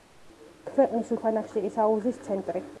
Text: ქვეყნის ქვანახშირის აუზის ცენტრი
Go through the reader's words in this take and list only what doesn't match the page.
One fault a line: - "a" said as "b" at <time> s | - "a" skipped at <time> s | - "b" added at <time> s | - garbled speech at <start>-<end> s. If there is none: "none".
none